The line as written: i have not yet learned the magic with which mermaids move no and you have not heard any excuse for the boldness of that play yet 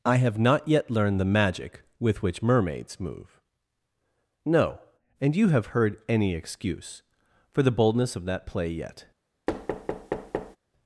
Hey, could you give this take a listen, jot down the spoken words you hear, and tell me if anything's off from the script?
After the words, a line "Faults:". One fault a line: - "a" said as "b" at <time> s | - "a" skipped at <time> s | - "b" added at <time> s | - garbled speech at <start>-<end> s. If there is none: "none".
i have not yet learned the magic with which mermaids move no and you have heard any excuse for the boldness of that play yet
Faults:
- "not" skipped at 5.7 s